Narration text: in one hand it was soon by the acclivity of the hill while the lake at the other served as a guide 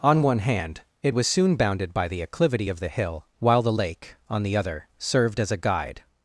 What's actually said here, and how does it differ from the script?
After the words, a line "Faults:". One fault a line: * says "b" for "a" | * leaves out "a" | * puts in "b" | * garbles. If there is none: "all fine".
on one hand it was soon bounded by the acclivity of the hill while the lake on the other served as a guide
Faults:
* says "on" for "in"
* puts in "bounded"
* says "on" for "at"